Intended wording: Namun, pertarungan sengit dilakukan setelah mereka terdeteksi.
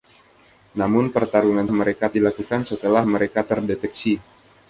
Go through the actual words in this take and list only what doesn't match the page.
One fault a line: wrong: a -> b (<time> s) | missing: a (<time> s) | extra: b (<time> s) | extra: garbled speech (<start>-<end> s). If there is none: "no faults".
wrong: sengit -> mereka (1.7 s)